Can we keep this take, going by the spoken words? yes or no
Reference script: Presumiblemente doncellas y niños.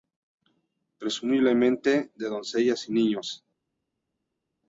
no